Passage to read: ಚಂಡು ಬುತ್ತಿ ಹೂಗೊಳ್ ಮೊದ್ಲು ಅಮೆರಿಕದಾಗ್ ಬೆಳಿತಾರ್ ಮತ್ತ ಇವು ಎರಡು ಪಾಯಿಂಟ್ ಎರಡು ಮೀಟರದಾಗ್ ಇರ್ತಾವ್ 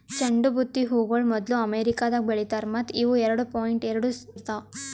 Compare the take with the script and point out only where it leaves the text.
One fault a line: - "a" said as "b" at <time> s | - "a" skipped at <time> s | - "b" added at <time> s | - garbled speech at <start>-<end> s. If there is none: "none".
- "ಮೀಟರದಾಗ್" skipped at 4.1 s